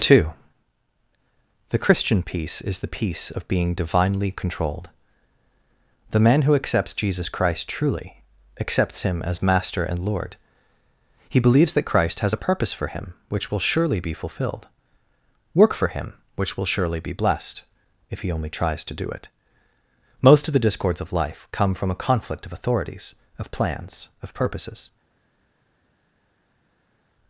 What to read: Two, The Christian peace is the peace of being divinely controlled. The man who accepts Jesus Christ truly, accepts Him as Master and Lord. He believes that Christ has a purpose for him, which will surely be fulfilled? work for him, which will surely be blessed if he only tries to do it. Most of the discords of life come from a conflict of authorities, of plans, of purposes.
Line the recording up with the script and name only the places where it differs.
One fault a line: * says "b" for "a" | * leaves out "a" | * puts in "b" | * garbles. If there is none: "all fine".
all fine